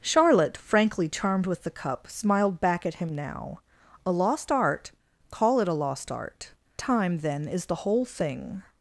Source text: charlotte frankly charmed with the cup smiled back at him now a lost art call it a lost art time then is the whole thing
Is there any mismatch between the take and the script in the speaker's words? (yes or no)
no